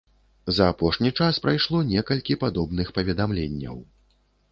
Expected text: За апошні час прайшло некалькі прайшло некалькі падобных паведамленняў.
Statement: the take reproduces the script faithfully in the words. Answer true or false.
false